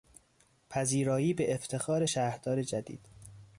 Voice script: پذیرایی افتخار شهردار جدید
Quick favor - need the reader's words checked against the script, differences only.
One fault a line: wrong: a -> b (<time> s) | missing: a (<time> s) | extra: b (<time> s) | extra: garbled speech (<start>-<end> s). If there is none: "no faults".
extra: به (1.3 s)